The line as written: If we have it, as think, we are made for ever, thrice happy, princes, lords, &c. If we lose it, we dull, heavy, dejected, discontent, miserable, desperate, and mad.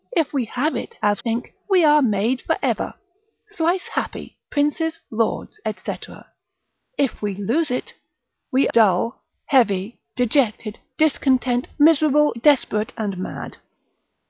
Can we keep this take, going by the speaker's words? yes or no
yes